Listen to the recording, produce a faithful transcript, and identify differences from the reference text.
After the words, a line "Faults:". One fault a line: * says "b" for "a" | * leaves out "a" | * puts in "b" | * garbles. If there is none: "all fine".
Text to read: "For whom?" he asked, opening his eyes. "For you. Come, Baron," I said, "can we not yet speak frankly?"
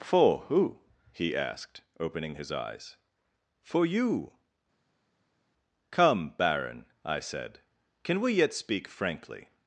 "For who?" he asked, opening his eyes. "For you. Come, Baron," I said, "can we yet speak frankly?"
Faults:
* says "who" for "whom"
* leaves out "not"